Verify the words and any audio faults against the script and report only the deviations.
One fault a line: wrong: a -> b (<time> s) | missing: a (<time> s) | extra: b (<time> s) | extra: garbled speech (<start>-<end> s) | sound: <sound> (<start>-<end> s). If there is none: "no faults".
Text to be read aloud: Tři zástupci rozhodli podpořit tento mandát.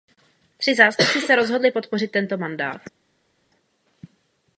extra: se (1.2 s)